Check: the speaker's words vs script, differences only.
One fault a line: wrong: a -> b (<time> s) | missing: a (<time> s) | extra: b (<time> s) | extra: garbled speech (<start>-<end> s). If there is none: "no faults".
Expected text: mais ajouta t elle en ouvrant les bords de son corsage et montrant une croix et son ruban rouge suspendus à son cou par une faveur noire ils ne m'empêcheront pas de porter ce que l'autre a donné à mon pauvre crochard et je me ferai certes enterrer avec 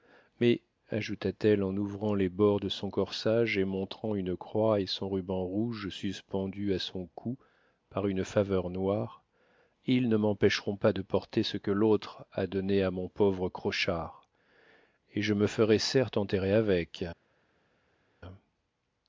no faults